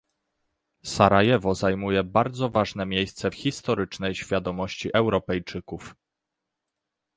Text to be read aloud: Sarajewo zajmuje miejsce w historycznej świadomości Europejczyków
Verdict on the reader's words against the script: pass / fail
fail